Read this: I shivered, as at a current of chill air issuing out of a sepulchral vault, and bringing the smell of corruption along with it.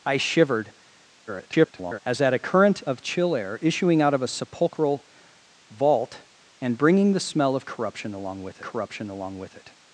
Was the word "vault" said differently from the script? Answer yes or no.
no